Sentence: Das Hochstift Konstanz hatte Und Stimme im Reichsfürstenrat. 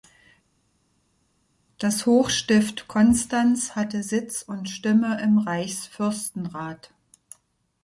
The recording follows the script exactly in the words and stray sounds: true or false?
false